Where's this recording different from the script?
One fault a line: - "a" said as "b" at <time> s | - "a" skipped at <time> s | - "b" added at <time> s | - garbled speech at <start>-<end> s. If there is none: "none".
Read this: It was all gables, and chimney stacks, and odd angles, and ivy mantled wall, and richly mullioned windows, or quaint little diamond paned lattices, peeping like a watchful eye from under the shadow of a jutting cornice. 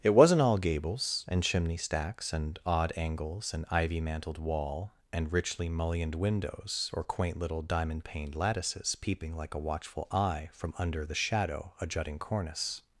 - "was" said as "wasn't" at 0.1 s
- "of" skipped at 11.7 s